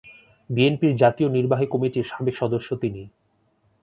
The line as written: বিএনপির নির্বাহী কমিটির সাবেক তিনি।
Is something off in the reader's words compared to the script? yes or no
yes